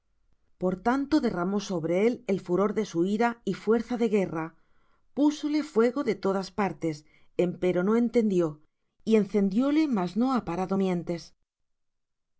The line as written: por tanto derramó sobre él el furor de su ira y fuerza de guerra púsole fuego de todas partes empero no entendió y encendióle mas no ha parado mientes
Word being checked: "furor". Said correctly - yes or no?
yes